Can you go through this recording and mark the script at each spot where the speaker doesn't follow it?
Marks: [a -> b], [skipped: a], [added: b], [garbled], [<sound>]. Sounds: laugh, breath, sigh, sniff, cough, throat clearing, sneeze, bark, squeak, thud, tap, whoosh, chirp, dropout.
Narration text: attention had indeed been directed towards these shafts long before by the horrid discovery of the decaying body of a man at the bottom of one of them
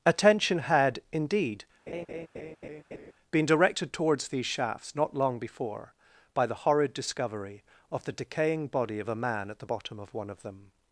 attention had indeed [laugh] been directed towards these shafts [added: not] long before by the horrid discovery of the decaying body of a man at the bottom of one of them